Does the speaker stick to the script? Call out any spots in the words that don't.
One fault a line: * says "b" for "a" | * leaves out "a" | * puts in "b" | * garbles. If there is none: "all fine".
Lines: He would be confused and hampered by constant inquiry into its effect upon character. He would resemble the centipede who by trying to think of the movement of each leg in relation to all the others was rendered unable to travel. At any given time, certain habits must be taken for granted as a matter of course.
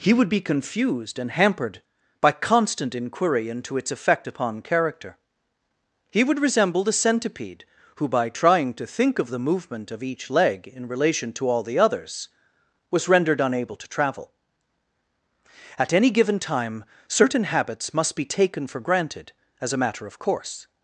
all fine